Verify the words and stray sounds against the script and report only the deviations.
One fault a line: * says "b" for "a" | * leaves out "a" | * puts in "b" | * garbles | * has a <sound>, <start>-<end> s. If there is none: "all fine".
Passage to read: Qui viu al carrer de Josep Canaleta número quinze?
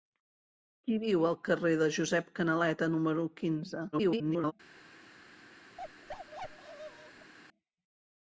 * garbles
* has a bark, 5.8-7.3 s